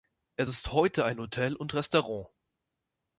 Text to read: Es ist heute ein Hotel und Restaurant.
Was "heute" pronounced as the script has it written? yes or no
yes